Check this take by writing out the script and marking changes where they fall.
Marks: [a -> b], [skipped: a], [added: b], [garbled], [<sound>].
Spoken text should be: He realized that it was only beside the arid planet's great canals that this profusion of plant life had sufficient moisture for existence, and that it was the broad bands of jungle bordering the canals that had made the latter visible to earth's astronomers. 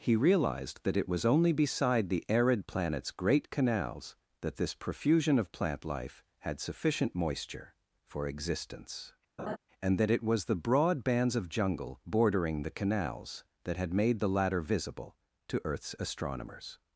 He realized that it was only beside the arid planet's great canals that this profusion of plant life had sufficient moisture for existence, [laugh] and that it was the broad bands of jungle bordering the canals that had made the latter visible to earth's astronomers.